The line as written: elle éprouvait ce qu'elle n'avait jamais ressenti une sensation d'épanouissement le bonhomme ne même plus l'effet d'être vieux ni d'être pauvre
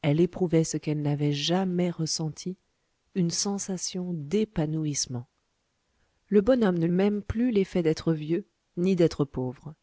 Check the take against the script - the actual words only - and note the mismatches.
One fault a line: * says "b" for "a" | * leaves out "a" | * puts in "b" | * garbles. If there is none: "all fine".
all fine